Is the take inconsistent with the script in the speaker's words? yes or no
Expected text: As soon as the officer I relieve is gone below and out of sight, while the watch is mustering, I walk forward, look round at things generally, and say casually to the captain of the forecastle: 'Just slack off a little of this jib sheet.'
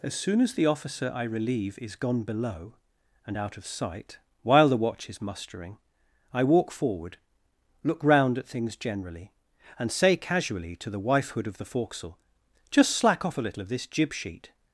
yes